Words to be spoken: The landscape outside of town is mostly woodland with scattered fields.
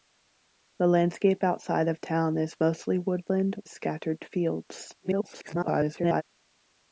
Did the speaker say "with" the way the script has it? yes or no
no